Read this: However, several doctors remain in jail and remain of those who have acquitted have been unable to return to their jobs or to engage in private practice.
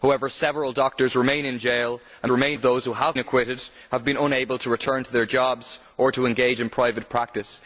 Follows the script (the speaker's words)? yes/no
yes